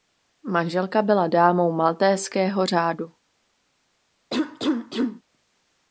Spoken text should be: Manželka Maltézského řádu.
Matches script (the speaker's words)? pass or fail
fail